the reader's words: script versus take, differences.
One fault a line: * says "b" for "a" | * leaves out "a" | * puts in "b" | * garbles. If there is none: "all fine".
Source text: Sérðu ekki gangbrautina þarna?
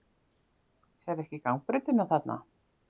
all fine